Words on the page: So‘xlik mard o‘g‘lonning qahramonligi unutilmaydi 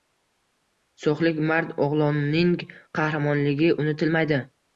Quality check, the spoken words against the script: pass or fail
pass